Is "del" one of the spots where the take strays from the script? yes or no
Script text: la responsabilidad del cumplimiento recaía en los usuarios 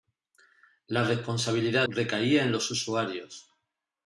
yes